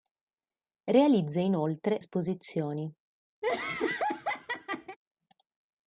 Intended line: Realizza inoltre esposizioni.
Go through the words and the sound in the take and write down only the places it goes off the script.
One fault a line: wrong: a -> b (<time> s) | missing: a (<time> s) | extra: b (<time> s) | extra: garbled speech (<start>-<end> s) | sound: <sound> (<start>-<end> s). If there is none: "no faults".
sound: laugh (3.4-5.0 s)